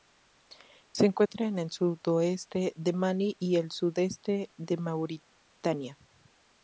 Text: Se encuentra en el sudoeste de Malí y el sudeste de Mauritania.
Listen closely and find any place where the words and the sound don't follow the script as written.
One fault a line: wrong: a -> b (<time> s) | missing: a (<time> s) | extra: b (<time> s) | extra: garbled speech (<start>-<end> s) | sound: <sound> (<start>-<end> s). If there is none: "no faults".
sound: dropout (1.3-1.3 s)